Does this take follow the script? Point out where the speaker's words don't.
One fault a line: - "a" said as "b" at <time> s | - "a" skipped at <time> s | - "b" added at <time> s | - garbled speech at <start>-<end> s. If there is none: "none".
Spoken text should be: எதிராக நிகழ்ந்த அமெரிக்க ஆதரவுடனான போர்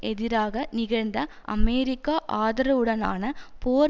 none